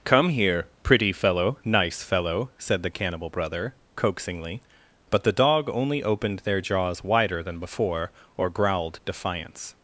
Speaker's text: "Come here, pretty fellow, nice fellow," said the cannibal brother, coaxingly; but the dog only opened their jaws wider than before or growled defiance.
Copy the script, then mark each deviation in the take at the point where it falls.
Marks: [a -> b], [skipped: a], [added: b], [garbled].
"Come here, pretty fellow, nice fellow," said the cannibal brother, coaxingly; but the dog only opened their jaws wider than before or growled defiance.